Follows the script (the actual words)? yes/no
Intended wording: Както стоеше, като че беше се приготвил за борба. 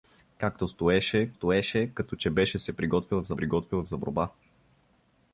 no